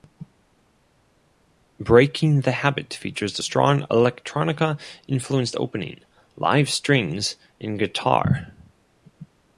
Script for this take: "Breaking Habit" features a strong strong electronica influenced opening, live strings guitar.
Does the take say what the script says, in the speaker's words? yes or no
no